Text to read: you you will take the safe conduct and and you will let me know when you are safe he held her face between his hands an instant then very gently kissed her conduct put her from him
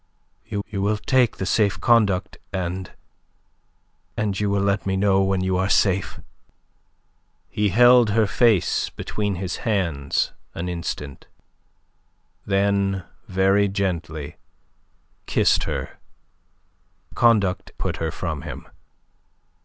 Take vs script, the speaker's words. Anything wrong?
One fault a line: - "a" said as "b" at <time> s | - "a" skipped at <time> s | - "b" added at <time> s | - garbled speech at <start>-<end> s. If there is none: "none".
none